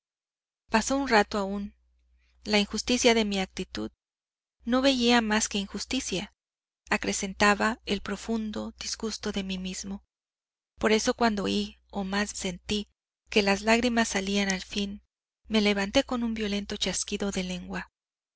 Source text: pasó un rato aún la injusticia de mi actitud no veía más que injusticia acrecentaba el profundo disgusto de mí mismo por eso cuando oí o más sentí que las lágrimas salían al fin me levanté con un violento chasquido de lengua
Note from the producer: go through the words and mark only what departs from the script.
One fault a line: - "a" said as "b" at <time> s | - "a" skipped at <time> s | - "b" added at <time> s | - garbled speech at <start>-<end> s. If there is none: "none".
none